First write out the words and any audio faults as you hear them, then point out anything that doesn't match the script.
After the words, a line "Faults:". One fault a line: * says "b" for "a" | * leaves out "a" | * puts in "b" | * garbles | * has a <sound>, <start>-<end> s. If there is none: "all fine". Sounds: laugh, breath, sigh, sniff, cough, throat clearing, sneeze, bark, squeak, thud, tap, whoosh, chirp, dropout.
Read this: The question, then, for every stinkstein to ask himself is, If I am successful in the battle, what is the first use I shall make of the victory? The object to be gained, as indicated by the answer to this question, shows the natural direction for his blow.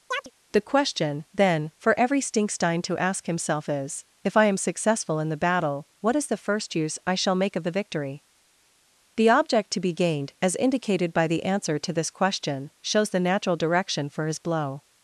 The question, then, for every stinkstein to ask himself is, If I am successful in the battle, what is the first use I shall make of the victory? The object to be gained, as indicated by the answer to this question, shows the natural direction for his blow.
Faults:
* has a chirp, 0.1-0.3 s